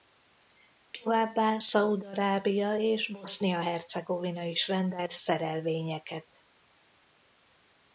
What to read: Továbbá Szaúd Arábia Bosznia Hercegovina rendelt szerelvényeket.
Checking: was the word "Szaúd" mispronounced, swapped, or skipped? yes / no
no